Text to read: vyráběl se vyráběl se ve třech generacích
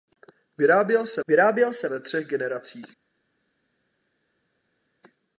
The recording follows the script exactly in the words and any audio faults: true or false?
true